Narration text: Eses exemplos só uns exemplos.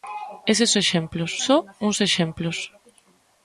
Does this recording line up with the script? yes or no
yes